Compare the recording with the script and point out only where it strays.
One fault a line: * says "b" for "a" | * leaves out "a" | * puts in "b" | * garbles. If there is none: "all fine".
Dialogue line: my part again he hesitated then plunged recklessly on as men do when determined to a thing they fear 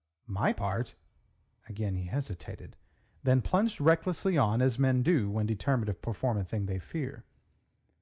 * puts in "perform"